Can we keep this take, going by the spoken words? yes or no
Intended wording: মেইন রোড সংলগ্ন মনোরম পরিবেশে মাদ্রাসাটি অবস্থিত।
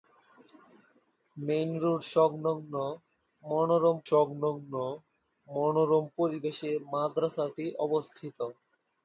no